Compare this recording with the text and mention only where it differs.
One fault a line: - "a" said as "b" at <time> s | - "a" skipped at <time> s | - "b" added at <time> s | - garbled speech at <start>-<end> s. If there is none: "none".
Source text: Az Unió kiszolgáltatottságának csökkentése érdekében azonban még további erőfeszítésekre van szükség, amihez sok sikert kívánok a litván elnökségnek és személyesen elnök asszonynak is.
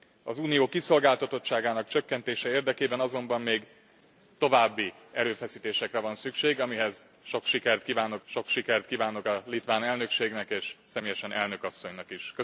- "sok sikert kívánok" added at 8.3 s